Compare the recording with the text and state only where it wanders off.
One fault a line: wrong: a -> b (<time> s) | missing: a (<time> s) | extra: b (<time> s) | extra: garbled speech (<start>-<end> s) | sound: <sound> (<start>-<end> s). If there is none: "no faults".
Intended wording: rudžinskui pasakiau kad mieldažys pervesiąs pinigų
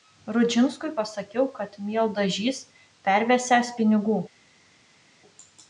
no faults